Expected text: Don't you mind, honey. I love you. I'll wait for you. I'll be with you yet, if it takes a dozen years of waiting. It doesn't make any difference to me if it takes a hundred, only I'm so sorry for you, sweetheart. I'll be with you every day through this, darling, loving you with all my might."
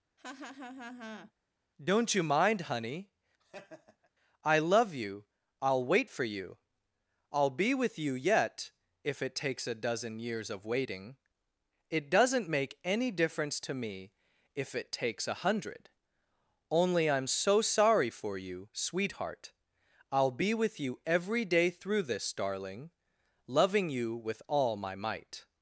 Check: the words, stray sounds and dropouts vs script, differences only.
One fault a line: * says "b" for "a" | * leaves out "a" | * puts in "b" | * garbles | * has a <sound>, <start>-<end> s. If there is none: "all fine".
* has a laugh, 0.2-1.3 s
* has a laugh, 3.4-4.1 s